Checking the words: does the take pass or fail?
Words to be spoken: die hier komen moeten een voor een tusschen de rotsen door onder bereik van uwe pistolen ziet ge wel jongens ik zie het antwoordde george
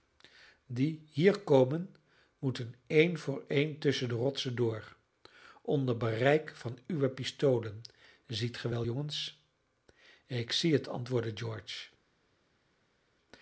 pass